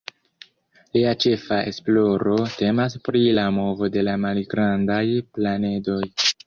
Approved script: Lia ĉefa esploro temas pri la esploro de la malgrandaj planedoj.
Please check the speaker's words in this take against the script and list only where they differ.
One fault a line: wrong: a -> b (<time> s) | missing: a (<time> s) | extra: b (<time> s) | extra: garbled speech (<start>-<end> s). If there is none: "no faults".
wrong: esploro -> movo (3.6 s)